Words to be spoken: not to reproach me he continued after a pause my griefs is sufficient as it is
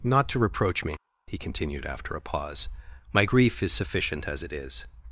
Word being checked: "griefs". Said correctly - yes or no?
no